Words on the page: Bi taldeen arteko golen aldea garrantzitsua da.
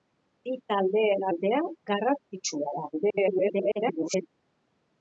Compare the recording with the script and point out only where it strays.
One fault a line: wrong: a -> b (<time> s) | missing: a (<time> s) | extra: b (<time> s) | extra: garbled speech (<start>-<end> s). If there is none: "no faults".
missing: arteko golen (1.2 s)
extra: garbled speech (2.9-4.3 s)